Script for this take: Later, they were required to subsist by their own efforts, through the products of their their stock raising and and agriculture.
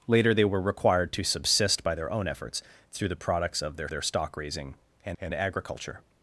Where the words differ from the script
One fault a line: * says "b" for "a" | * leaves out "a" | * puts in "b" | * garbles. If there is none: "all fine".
all fine